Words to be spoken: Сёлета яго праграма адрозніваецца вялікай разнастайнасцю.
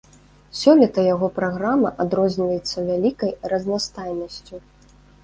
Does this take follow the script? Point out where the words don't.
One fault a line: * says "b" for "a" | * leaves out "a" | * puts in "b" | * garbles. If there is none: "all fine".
all fine